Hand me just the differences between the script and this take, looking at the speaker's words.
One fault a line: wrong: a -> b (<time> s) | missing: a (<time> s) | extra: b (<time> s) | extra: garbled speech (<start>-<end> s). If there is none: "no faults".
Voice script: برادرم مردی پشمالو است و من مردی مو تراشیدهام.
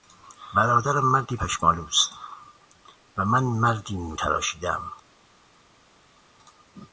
no faults